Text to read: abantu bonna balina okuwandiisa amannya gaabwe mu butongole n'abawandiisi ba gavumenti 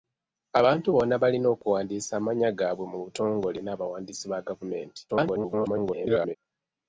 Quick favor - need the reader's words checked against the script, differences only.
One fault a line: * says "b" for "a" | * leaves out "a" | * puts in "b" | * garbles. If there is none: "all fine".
* garbles